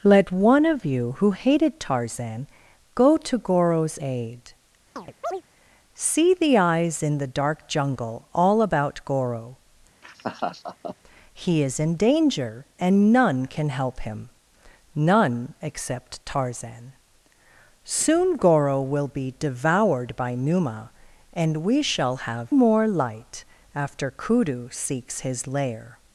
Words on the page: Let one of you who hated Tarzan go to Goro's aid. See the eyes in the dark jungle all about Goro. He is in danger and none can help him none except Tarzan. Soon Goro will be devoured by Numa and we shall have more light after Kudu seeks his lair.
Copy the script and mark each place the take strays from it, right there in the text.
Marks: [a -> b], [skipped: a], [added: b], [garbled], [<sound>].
Let one of you who hated Tarzan go to Goro's aid. [chirp] See the eyes in the dark jungle all about Goro. [laugh] He is in danger and none can help him none except Tarzan. Soon Goro will be devoured by Numa and we shall have more light after Kudu seeks his lair.